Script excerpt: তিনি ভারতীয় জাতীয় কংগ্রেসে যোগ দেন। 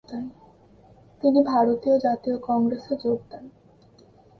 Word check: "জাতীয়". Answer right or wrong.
right